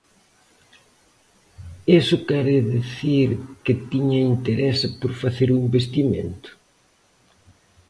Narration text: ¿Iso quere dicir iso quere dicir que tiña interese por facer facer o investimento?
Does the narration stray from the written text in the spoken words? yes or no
yes